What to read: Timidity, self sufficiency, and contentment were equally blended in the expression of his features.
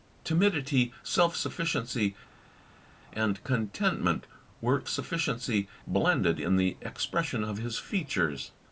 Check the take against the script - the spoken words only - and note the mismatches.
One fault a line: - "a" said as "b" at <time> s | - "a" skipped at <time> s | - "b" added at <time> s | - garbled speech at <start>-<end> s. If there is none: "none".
- "equally" said as "sufficiency" at 4.9 s